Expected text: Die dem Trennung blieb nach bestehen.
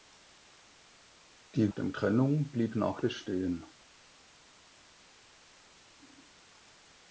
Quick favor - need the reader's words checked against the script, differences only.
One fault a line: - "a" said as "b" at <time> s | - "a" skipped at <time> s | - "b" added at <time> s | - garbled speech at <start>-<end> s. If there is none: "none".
none